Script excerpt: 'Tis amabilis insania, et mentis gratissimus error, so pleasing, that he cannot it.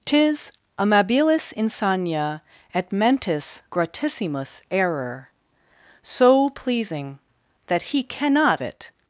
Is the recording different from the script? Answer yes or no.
no